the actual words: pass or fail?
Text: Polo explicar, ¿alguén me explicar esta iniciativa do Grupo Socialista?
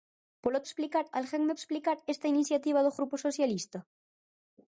pass